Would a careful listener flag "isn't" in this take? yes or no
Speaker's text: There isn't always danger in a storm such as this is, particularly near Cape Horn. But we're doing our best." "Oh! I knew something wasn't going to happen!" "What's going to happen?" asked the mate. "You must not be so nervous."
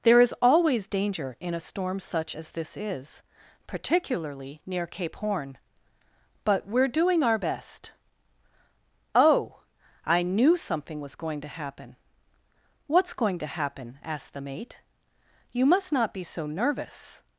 yes